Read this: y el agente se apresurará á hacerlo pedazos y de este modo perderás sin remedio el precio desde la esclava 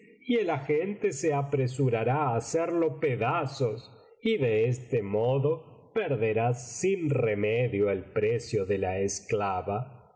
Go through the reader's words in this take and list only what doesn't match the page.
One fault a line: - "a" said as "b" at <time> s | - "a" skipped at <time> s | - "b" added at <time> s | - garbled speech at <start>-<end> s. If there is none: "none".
- "desde" said as "de" at 8.7 s